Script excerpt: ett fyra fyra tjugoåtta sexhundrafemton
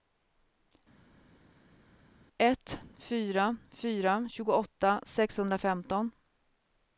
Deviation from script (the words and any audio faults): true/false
false